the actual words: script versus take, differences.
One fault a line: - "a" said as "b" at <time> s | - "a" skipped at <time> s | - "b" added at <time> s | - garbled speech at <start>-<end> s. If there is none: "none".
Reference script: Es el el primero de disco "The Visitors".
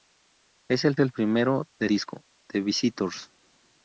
none